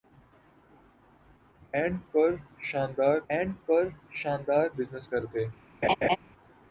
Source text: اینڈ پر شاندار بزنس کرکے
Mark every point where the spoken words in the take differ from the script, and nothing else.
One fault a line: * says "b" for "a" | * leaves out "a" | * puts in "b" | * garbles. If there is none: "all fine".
* puts in "اینڈ پر شاندار"